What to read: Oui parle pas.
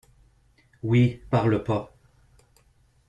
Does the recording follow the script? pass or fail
pass